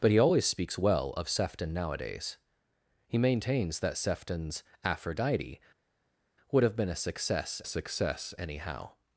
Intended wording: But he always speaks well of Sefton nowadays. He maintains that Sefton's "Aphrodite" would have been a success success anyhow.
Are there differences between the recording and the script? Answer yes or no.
no